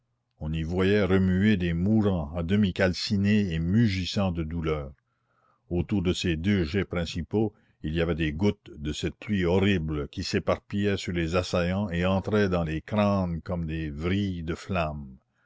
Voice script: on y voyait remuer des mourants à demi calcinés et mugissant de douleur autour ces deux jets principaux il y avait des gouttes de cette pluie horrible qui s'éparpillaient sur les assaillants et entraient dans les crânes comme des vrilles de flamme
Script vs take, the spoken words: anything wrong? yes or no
yes